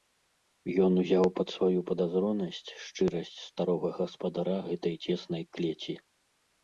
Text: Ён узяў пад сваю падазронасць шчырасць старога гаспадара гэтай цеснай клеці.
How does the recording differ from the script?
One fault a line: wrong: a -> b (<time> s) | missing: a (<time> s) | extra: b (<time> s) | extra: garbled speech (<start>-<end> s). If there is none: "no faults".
no faults